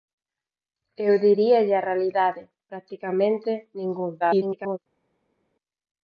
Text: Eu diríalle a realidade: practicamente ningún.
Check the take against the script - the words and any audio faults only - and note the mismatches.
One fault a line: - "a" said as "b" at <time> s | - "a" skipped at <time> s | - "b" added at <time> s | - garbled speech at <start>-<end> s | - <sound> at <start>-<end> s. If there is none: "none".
- garbled speech at 4.2-4.8 s